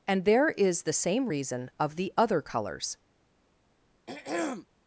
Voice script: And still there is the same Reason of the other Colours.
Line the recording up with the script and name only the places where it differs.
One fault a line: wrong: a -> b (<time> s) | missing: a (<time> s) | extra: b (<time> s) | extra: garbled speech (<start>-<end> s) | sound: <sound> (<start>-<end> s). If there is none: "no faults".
missing: still (0.2 s)
sound: throat clearing (4.1-4.7 s)